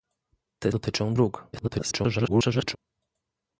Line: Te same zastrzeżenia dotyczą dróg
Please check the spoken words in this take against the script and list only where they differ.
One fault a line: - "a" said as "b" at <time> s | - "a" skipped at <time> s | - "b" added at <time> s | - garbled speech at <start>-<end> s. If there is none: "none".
- "same zastrzeżenia" skipped at 0.7 s
- garbled speech at 1.5-2.8 s